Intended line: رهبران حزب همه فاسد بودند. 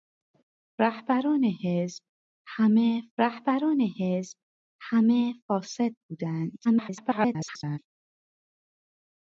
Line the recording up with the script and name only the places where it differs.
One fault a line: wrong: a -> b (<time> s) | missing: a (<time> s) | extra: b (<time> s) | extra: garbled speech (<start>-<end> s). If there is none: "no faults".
extra: رهبران حزب همه (3.2 s)
extra: garbled speech (6.6-7.8 s)